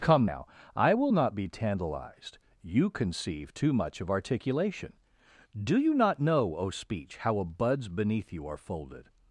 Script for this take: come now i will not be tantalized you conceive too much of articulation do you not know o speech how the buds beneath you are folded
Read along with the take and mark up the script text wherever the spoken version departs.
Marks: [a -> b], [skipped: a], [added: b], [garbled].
come now i will not be tantalized you conceive too much of articulation do you not know o speech how [the -> a] buds beneath you are folded